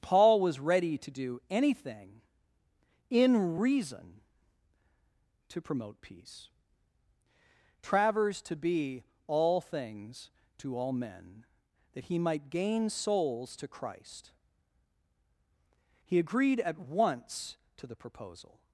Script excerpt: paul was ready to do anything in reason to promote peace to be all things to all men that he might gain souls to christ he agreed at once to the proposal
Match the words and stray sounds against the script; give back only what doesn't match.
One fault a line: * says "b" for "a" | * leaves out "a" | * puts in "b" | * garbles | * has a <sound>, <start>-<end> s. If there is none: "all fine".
* puts in "travers"